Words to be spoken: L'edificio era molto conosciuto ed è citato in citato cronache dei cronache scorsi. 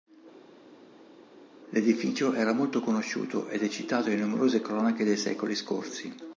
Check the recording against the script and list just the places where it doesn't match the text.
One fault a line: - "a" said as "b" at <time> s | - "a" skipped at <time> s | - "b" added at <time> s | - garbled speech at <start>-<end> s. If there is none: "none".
- "citato" said as "numerose" at 4.2 s
- "cronache" said as "secoli" at 5.2 s